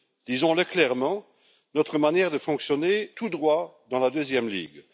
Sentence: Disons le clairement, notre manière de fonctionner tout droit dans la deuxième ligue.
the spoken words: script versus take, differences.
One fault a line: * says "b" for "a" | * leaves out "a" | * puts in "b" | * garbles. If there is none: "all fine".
all fine